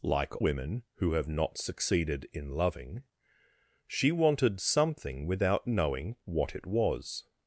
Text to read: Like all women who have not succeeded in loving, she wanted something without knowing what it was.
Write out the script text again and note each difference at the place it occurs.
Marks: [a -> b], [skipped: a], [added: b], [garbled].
Like [skipped: all] women who have not succeeded in loving, she wanted something without knowing what it was.